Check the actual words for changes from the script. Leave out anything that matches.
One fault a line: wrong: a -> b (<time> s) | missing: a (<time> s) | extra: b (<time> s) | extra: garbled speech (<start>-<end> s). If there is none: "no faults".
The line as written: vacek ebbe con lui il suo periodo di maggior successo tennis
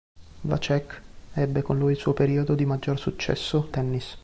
no faults